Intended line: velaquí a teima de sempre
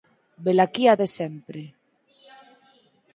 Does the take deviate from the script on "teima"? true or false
true